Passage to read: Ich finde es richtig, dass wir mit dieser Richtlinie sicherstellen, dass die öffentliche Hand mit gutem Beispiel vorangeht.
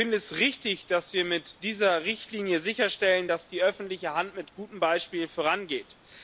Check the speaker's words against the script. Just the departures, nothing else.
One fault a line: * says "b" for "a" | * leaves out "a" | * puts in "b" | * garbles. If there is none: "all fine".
all fine